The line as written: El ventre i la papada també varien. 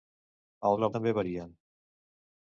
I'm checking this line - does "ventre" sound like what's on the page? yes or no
no